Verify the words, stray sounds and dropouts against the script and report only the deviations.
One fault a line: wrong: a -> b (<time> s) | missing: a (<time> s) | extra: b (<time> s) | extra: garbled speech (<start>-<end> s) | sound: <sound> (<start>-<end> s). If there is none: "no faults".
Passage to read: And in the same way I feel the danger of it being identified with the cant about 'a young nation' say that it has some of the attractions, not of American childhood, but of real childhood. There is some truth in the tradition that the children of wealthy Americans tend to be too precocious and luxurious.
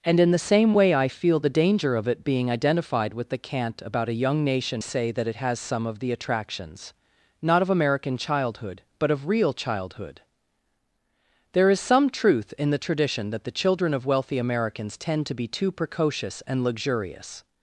no faults